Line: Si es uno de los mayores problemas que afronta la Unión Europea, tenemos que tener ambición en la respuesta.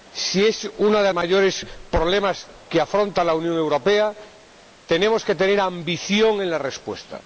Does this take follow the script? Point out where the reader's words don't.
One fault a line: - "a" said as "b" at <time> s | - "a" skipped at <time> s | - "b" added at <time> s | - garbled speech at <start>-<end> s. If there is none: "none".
- "los" skipped at 1.1 s